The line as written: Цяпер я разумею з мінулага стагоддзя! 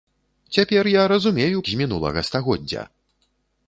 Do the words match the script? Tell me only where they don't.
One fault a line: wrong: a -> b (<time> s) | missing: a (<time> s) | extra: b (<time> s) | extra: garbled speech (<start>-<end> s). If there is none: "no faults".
no faults